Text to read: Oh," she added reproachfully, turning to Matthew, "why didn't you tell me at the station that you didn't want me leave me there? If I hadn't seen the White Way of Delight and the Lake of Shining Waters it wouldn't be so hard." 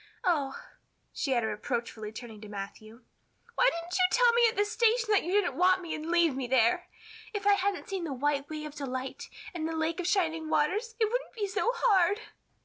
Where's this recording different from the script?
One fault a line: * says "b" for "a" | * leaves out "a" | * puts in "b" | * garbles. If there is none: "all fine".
* puts in "and"